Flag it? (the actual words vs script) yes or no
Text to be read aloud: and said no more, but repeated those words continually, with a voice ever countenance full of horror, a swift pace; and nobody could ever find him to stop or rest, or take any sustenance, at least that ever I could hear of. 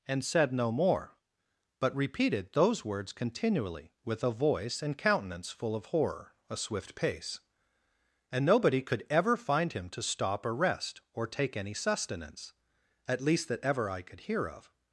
yes